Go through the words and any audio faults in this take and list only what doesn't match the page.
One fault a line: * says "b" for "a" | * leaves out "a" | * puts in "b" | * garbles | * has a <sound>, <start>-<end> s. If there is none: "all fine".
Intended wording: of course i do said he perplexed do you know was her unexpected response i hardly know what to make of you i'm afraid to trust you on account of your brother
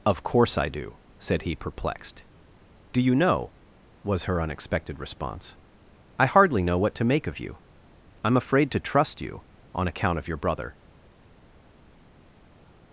all fine